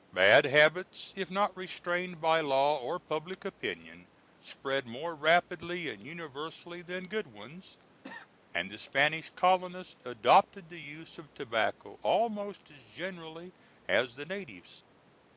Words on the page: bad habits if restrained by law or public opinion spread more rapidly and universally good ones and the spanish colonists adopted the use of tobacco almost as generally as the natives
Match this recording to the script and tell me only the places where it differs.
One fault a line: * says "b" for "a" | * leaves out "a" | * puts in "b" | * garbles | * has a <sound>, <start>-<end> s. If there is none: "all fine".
* puts in "not"
* puts in "than"
* has a cough, 8.0-8.3 s